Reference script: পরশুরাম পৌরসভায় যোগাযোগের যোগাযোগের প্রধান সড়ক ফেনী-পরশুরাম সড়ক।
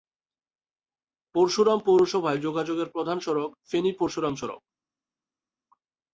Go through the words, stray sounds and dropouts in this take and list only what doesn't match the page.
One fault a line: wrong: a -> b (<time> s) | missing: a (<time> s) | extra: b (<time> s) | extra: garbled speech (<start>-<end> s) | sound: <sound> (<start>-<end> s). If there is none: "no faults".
missing: যোগাযোগের (2.9 s)